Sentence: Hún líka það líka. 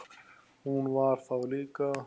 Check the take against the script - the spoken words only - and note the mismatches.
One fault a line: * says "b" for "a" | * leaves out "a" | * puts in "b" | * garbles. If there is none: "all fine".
* says "var" for "líka"